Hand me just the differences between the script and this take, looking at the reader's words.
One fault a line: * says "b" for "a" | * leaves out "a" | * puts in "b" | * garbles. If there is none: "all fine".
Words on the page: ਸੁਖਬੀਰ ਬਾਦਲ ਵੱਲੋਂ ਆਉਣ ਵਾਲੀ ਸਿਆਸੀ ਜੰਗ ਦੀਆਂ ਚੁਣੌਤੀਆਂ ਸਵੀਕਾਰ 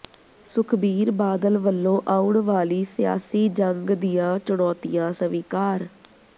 all fine